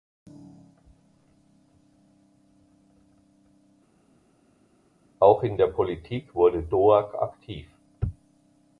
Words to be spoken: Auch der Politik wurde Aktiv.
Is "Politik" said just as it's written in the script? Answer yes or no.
yes